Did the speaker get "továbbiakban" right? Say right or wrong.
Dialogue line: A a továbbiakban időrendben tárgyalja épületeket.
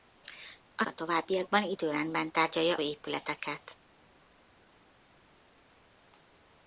right